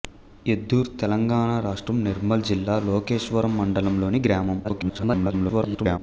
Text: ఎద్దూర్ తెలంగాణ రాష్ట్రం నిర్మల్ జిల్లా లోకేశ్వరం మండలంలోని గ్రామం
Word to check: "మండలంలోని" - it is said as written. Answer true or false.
true